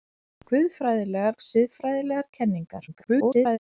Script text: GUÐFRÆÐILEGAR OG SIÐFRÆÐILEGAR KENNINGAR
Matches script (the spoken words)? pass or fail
fail